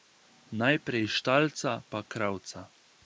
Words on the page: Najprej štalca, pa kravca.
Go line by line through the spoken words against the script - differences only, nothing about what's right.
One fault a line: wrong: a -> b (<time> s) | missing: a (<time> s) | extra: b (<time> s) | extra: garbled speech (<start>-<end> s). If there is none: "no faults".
no faults